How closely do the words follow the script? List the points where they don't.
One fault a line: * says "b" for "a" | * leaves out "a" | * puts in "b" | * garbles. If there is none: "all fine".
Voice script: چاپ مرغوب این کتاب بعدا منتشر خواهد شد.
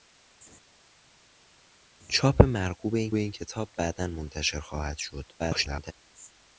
* puts in "این"
* garbles